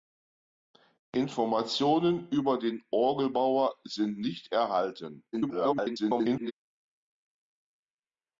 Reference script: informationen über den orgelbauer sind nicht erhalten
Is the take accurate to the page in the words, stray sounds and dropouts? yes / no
no